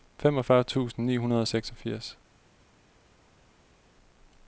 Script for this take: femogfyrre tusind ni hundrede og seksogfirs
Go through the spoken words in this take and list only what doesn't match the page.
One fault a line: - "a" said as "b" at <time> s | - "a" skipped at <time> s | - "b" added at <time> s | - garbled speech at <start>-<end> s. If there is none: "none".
none